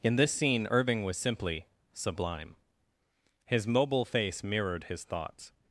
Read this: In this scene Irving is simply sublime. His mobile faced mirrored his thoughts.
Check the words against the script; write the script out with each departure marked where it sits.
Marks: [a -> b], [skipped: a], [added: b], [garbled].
In this scene Irving [is -> was] simply sublime. His mobile [faced -> face] mirrored his thoughts.